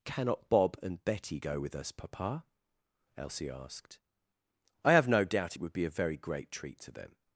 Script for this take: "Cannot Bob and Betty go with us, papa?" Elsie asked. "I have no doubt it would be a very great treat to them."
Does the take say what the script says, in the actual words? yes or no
yes